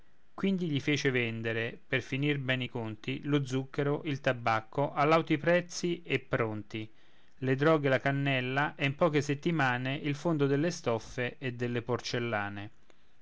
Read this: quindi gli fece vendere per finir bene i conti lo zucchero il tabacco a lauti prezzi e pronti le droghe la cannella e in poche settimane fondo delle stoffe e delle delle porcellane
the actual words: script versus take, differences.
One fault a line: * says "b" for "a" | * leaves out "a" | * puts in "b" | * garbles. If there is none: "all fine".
* puts in "il"
* leaves out "delle"